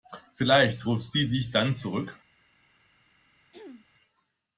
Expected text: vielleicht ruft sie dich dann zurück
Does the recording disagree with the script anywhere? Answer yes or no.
no